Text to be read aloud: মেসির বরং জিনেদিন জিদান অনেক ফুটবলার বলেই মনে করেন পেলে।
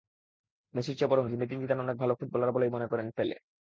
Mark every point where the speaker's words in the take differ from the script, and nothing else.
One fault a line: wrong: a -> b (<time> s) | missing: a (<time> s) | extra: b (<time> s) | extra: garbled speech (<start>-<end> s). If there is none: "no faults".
extra: চেয়ে (1.0 s)
extra: ভালো (2.0 s)